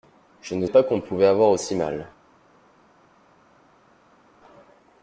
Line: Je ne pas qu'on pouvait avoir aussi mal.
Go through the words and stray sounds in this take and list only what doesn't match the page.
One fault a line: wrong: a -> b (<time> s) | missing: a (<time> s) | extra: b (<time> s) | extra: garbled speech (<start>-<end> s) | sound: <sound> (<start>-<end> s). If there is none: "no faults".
no faults